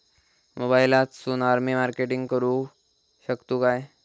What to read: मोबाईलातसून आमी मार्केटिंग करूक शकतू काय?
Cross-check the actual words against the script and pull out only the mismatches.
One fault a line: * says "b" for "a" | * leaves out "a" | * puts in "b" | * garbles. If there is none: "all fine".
all fine